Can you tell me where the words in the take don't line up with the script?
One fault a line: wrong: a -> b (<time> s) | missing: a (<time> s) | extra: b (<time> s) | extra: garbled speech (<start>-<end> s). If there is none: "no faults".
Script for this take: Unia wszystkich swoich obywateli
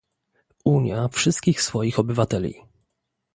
no faults